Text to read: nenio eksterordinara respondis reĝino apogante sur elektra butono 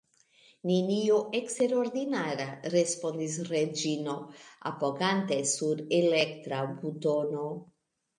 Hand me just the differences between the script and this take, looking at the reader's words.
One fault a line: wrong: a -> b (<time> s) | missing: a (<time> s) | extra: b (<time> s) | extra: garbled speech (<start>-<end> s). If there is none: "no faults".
no faults